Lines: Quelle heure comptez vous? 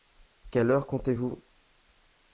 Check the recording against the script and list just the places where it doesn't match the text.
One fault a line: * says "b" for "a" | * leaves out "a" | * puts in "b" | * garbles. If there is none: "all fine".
all fine